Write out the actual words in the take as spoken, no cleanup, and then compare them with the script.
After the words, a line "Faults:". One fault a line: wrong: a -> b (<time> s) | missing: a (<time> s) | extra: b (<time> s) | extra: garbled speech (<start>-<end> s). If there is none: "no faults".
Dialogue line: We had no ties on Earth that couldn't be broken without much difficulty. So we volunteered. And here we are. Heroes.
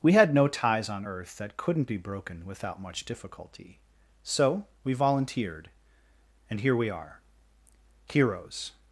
We had no ties on Earth that couldn't be broken without much difficulty. So we volunteered. And here we are. Heroes.
Faults:
no faults